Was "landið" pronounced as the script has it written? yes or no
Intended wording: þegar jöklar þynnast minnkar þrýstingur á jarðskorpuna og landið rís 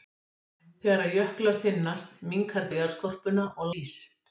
no